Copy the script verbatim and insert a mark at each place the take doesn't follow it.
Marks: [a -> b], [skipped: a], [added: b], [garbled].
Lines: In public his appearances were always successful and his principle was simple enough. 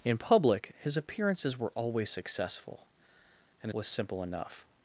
In public his appearances were always successful and [skipped: his principle] was simple enough.